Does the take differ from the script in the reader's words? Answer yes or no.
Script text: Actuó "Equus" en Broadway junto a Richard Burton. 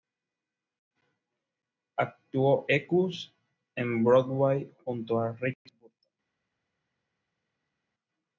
no